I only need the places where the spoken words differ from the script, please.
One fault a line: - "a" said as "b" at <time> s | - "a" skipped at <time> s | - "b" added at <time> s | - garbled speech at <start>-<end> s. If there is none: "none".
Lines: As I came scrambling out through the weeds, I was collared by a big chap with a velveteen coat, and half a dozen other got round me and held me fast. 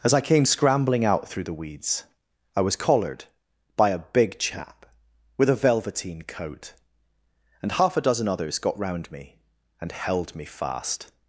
- "other" said as "others" at 8.3 s